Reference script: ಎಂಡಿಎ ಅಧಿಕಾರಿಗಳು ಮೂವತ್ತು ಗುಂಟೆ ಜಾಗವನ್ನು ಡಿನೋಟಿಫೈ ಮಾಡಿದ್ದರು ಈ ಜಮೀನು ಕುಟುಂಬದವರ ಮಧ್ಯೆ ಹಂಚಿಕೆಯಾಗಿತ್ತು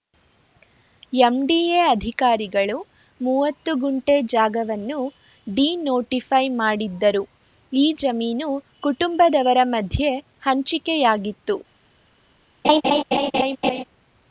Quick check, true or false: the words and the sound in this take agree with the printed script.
false